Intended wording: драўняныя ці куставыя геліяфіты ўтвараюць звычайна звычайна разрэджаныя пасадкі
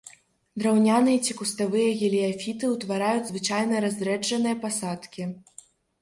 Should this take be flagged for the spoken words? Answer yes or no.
yes